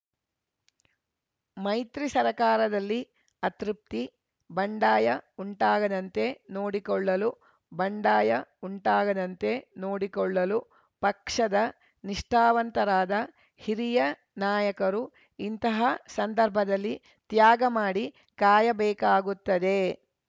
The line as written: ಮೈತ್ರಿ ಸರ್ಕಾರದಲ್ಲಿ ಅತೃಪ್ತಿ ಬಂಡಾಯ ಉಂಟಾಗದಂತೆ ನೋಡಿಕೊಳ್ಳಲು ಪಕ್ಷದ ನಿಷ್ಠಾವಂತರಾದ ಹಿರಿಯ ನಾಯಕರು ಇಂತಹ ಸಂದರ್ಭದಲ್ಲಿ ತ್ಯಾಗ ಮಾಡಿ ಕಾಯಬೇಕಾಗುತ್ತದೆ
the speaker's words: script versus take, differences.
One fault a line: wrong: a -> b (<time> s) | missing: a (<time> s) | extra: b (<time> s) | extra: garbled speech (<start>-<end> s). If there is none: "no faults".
extra: ಬಂಡಾಯ ಉಂಟಾಗದಂತೆ ನೋಡಿಕೊಳ್ಳಲು (7.7 s)